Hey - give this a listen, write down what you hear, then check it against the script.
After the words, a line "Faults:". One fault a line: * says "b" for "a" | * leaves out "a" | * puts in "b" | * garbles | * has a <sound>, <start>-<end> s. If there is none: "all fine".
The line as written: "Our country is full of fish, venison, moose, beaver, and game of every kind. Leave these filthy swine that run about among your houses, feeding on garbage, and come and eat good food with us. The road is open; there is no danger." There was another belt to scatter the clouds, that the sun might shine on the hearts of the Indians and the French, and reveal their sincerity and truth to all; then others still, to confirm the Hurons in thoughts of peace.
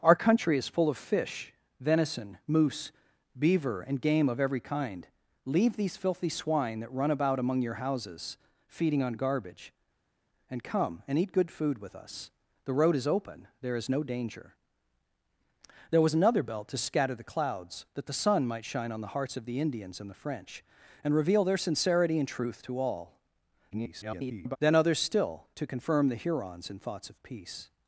"Our country is full of fish, venison, moose, beaver, and game of every kind. Leave these filthy swine that run about among your houses, feeding on garbage, and come and eat good food with us. The road is open; there is no danger." There was another belt to scatter the clouds, that the sun might shine on the hearts of the Indians and the French, and reveal their sincerity and truth to all; [garbled] then others still, to confirm the Hurons in thoughts of peace.
Faults:
* garbles